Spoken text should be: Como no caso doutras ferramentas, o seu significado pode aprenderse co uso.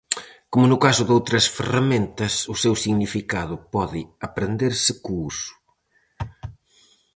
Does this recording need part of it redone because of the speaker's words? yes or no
no